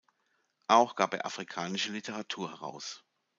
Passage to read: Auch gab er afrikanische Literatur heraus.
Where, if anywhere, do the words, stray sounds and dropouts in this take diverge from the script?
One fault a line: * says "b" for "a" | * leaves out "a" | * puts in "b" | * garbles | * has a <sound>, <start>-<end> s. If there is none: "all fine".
all fine